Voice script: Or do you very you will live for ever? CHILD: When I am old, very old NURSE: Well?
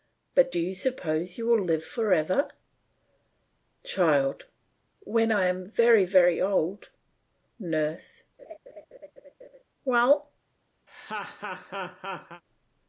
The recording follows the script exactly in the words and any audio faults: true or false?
false